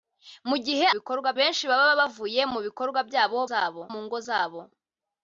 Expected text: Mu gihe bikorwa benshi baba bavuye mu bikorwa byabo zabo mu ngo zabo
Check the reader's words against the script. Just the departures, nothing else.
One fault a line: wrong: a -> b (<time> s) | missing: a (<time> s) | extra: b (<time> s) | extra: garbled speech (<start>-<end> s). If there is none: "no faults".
no faults